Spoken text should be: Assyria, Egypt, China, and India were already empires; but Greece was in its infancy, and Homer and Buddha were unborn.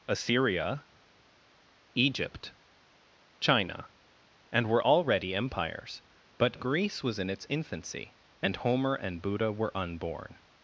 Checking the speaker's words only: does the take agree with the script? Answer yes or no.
no